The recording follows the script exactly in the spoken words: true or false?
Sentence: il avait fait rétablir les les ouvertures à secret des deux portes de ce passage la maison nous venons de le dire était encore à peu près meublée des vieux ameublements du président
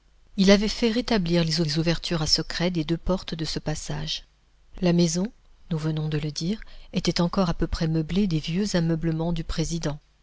true